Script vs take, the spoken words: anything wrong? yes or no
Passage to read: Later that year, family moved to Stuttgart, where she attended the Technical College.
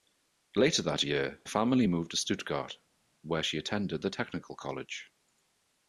no